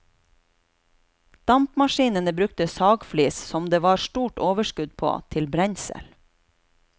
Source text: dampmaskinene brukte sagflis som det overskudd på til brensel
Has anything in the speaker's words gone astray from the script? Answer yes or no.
yes